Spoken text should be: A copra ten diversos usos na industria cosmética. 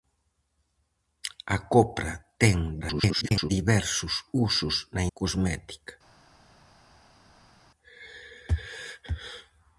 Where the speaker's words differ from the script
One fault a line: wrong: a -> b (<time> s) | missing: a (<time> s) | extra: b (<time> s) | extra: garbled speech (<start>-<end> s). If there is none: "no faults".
extra: garbled speech (2.8-3.5 s)
missing: industria (5.0 s)